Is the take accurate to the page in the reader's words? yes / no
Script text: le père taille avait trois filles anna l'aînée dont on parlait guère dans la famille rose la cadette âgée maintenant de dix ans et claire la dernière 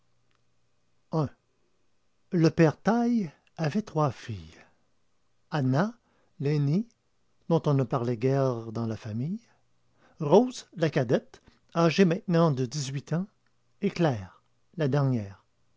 no